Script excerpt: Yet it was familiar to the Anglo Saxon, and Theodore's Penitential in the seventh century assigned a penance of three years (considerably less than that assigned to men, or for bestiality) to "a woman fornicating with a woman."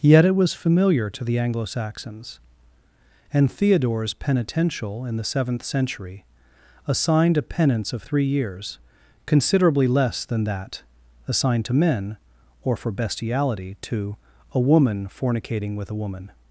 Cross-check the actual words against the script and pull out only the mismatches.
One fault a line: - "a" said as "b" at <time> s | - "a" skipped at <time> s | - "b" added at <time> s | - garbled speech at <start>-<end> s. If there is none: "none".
- "Saxon" said as "Saxons" at 1.6 s